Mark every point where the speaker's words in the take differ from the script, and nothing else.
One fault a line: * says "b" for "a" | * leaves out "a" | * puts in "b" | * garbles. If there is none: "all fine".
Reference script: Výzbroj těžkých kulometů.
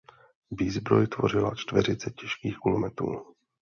* puts in "tvořila čtveřice"